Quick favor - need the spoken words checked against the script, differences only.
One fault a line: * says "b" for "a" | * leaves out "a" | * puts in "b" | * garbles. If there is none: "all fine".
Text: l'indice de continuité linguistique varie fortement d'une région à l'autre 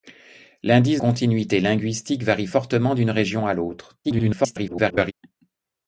* leaves out "de"
* garbles